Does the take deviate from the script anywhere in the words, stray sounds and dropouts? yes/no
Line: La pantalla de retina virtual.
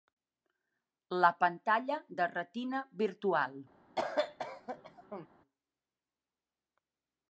yes